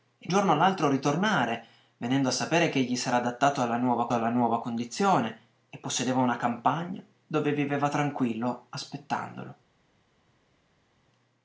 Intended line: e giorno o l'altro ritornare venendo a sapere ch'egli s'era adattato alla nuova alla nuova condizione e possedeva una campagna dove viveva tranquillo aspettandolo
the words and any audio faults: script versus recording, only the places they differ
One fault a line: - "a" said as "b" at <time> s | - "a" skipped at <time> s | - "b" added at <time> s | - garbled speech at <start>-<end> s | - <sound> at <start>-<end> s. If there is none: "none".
none